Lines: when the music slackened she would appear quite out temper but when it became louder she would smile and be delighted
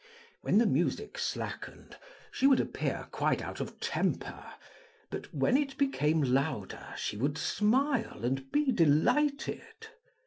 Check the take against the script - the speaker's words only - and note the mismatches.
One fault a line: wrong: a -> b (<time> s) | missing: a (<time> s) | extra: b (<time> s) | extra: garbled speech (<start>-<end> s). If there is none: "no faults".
extra: of (3.6 s)